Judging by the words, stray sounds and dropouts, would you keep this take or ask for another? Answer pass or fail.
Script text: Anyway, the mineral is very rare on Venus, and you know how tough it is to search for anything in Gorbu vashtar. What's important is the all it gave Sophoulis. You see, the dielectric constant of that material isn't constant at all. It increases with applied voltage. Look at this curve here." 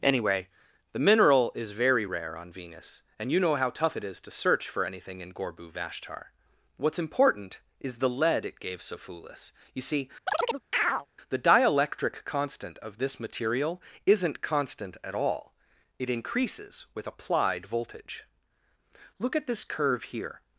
fail